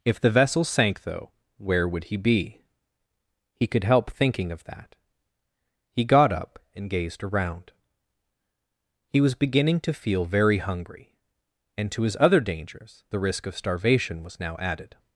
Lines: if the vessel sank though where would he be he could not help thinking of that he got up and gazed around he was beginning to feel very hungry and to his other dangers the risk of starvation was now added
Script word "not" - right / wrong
wrong